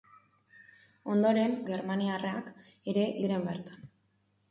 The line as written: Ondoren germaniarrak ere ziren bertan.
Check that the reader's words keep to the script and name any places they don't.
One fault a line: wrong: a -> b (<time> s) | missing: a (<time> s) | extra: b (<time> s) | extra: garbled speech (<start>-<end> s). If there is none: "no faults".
no faults